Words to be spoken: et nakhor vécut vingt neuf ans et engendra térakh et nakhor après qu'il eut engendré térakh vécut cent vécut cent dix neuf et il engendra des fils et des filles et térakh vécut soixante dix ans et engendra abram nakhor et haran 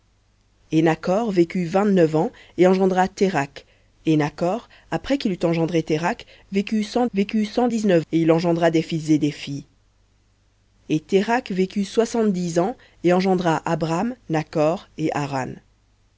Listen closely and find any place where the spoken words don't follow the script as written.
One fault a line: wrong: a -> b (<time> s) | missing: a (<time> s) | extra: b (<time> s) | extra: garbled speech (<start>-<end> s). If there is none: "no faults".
no faults